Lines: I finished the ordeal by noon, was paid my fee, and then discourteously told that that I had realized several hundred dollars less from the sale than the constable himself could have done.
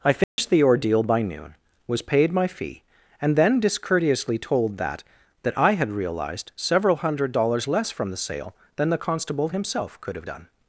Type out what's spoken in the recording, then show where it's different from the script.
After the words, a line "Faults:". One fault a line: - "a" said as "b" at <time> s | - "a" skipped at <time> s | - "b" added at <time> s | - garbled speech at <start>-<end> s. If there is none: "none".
I finished the ordeal by noon, was paid my fee, and then discourteously told that that I had realized several hundred dollars less from the sale than the constable himself could have done.
Faults:
none